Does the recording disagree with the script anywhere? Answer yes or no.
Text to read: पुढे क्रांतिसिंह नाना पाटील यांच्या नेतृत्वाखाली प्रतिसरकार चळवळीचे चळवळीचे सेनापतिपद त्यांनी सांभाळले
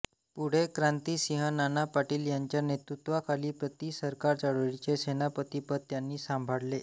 yes